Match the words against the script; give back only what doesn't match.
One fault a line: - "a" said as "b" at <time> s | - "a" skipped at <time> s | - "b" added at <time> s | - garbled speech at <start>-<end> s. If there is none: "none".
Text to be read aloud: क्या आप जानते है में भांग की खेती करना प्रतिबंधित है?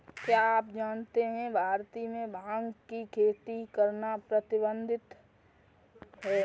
- "भारत" added at 1.5 s